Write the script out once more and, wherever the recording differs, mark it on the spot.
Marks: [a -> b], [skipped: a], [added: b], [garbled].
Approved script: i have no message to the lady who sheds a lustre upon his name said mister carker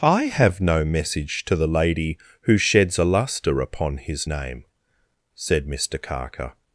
i have no message to the lady who sheds a lustre upon his name said mister carker